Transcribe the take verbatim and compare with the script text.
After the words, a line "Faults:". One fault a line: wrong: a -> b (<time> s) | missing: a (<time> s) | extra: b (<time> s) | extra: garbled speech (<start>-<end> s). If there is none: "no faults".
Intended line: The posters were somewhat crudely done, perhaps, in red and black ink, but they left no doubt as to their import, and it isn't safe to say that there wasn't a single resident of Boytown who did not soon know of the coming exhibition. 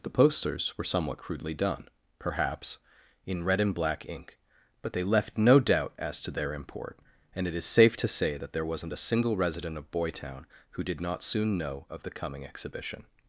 The posters were somewhat crudely done, perhaps, in red and black ink, but they left no doubt as to their import, and it is safe to say that there wasn't a single resident of Boytown who did not soon know of the coming exhibition.
Faults:
wrong: isn't -> is (7.5 s)